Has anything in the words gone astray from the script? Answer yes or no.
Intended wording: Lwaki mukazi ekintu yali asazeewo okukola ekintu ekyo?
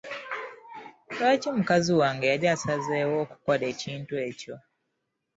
yes